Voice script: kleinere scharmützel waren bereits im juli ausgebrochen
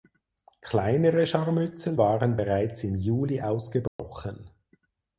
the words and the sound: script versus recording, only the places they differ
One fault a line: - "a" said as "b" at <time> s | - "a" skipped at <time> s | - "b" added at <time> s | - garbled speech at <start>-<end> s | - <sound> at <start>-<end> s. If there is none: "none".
- dropout at 3.9-4.0 s